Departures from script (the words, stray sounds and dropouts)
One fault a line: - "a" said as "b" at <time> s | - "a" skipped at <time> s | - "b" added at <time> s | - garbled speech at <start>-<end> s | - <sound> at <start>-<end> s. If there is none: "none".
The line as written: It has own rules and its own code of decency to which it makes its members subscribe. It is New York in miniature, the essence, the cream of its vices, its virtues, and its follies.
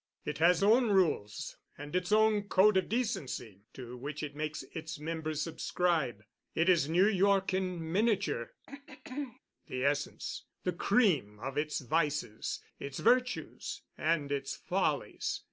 - throat clearing at 8.7-9.4 s